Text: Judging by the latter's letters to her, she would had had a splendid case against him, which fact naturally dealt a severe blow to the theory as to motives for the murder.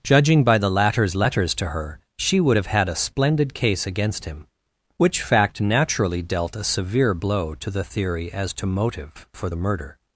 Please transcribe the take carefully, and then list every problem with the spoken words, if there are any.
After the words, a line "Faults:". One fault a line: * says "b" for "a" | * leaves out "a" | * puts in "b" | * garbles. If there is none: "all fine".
Judging by the latter's letters to her, she would have had a splendid case against him, which fact naturally dealt a severe blow to the theory as to motive for the murder.
Faults:
* says "have" for "had"
* says "motive" for "motives"